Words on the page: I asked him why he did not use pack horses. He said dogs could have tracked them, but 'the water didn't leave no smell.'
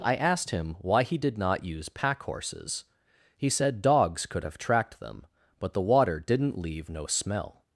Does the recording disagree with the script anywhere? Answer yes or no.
no